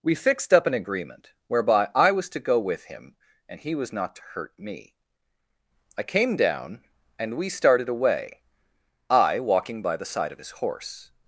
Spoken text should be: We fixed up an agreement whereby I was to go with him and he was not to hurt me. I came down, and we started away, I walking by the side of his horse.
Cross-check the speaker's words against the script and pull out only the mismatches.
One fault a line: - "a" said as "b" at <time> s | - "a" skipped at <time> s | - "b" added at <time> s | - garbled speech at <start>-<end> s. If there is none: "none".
none